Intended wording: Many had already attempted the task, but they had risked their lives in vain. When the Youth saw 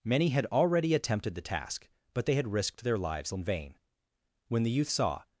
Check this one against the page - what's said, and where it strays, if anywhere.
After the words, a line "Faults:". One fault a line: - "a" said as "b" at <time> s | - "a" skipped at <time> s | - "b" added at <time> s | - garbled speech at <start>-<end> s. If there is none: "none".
Many had already attempted the task, but they had risked their lives in vain. When the Youth saw
Faults:
none